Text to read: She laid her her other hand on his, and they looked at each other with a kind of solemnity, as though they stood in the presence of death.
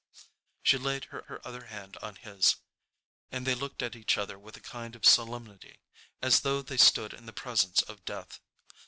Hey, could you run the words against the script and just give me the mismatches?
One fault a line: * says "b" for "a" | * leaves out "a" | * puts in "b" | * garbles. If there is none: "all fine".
all fine